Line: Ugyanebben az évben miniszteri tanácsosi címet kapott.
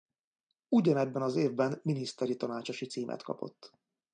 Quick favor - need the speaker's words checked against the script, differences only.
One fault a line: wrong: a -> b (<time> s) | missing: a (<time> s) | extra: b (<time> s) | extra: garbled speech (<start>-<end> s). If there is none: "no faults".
no faults